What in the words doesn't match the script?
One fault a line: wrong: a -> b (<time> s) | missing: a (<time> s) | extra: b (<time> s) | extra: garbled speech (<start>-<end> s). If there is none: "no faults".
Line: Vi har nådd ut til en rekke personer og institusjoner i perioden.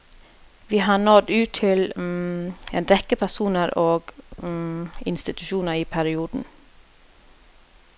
no faults